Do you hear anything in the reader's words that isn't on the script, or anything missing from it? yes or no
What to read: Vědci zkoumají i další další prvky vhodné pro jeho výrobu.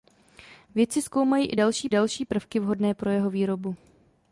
no